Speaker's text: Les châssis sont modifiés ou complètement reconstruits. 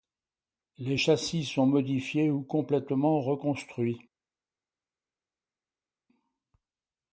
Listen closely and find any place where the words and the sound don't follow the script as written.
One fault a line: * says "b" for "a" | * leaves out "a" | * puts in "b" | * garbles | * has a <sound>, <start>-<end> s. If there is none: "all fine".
all fine